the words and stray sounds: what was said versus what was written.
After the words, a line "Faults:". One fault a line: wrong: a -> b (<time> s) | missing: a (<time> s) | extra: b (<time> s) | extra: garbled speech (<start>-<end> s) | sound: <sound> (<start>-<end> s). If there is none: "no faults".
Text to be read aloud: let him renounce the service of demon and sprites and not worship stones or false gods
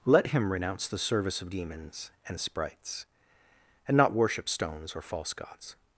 let him renounce the service of demons and sprites and not worship stones or false gods
Faults:
wrong: demon -> demons (1.5 s)